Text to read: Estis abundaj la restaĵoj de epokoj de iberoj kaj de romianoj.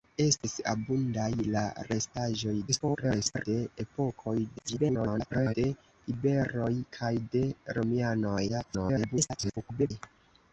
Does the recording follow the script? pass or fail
fail